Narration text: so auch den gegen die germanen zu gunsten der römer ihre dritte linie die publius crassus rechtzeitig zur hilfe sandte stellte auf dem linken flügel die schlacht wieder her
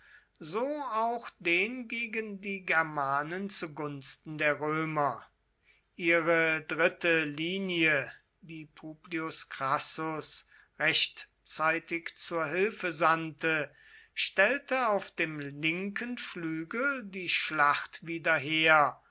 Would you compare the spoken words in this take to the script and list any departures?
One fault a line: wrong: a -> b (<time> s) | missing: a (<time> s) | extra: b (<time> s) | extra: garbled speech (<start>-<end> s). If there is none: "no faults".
no faults